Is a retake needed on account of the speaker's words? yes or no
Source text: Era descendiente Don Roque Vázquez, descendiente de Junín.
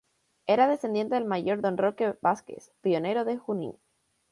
yes